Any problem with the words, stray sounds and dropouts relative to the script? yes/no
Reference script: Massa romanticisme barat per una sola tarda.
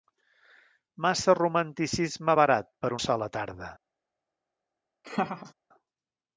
yes